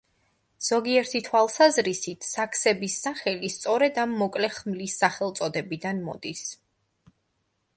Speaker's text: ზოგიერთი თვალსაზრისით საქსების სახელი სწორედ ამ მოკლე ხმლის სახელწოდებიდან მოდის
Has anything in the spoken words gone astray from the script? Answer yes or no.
no